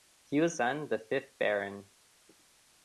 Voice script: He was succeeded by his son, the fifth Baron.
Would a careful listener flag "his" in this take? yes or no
yes